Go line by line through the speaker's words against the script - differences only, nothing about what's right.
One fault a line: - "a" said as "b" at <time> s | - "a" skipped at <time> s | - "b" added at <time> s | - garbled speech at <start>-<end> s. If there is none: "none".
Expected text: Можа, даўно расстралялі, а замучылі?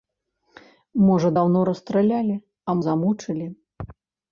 none